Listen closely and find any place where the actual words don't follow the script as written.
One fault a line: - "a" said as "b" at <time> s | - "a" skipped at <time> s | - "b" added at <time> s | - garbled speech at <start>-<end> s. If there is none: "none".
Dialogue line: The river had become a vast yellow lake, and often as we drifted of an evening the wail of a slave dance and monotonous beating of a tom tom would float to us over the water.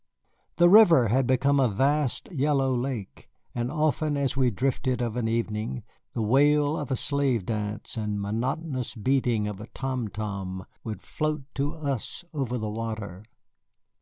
none